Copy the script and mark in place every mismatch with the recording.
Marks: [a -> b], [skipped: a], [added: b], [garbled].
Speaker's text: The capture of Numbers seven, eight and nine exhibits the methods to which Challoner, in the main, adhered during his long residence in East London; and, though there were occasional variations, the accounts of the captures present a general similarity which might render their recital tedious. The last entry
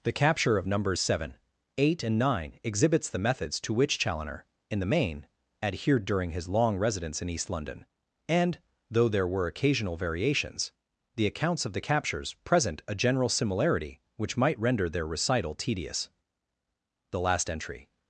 The capture of Numbers seven, eight and nine exhibits the methods to which Challoner, in the main, adhered during his long residence in East London; and, though there were occasional variations, the accounts of the captures present a general similarity which might render their recital tedious. The last entry